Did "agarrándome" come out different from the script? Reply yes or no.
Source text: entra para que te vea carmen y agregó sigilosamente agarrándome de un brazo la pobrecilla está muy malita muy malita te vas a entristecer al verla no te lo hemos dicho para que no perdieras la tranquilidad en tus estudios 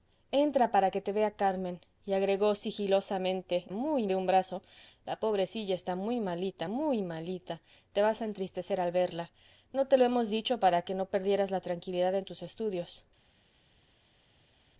yes